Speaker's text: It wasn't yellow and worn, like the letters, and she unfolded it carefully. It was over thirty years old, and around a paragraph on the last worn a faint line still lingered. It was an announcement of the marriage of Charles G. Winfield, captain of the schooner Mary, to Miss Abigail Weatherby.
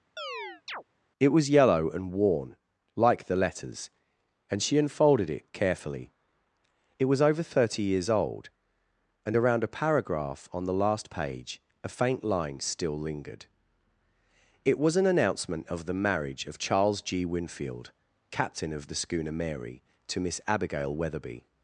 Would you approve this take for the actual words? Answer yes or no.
no